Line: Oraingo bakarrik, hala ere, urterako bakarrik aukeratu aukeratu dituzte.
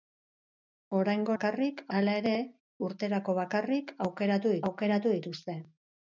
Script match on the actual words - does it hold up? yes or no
yes